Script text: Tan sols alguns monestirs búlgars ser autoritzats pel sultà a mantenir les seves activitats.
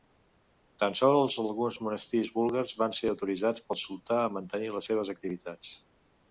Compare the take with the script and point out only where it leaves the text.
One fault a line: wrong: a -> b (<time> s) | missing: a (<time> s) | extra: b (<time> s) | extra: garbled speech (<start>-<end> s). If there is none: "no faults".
extra: van (2.8 s)